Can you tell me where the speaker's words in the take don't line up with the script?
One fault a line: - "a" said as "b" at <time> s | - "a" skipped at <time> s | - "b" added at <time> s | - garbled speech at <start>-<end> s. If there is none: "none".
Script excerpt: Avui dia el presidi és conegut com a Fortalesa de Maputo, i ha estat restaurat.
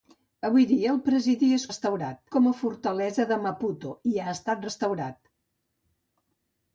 - "conegut" said as "restaurat" at 1.7 s